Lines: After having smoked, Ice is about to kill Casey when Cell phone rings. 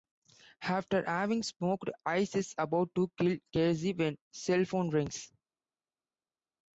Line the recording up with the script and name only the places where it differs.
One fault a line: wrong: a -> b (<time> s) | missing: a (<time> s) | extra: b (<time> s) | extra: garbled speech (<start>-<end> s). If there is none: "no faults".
no faults